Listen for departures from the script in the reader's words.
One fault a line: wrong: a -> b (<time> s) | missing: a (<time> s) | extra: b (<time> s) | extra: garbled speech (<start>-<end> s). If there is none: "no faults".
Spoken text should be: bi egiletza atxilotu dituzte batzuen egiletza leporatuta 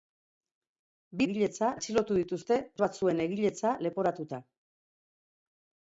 no faults